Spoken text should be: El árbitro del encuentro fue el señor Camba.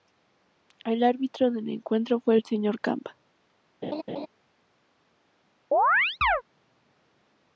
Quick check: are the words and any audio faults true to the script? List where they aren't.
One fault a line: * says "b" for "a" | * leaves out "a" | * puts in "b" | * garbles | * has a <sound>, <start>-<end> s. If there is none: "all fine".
* has a laugh, 3.8-4.3 s
* has a chirp, 5.7-6.4 s